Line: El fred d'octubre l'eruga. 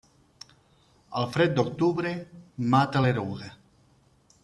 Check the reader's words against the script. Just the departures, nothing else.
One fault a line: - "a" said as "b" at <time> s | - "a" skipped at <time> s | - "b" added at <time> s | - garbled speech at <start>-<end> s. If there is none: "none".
- "mata" added at 2.8 s